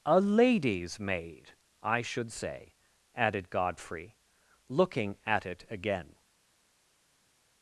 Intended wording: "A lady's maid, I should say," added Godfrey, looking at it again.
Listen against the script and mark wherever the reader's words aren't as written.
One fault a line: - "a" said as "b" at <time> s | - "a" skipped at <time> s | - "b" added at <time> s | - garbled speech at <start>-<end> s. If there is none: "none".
none